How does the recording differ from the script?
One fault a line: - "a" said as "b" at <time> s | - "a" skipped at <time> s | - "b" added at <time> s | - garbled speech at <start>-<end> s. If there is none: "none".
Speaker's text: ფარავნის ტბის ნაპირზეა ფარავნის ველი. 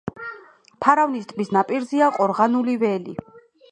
- "ფარავნის" said as "ყორღანული" at 2.2 s